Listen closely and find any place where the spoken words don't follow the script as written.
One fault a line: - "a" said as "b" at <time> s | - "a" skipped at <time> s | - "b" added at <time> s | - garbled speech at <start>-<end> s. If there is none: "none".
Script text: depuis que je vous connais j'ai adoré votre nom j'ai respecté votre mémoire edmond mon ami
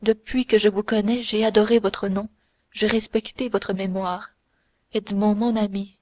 none